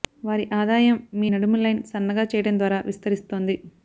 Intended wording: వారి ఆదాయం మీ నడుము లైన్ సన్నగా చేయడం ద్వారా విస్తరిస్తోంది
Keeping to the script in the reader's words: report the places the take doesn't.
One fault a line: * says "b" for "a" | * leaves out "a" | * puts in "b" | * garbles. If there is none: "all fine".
all fine